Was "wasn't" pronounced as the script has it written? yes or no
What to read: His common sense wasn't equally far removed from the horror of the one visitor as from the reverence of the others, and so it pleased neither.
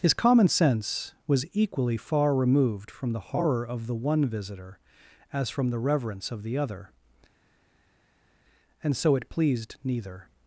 no